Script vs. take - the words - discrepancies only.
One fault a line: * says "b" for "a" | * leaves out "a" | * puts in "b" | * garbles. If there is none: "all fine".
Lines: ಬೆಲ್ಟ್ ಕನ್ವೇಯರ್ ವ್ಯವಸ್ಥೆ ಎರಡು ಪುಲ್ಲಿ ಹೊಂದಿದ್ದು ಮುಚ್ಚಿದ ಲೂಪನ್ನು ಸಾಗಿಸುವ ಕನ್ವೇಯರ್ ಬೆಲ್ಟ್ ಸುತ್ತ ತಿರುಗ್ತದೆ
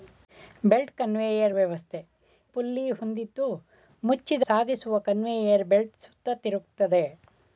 * leaves out "ಎರಡು"
* leaves out "ಲೂಪನ್ನು"